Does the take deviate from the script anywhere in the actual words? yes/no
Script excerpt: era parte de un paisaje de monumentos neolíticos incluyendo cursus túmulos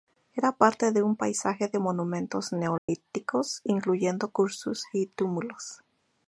yes